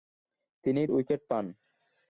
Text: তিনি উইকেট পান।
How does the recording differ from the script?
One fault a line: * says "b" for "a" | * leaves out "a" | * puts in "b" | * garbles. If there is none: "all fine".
all fine